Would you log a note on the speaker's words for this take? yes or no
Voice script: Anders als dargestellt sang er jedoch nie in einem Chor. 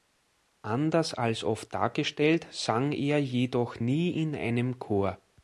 yes